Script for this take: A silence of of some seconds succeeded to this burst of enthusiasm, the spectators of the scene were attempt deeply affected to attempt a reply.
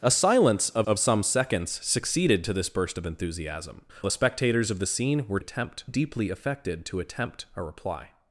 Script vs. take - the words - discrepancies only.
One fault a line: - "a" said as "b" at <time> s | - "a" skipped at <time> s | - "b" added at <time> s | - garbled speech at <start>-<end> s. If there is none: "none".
none